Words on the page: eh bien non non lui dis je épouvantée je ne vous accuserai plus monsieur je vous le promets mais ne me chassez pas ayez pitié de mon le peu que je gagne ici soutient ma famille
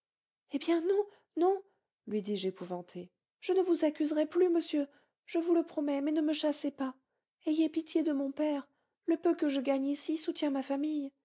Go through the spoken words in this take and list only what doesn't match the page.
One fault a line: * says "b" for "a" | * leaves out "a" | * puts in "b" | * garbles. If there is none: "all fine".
* puts in "père"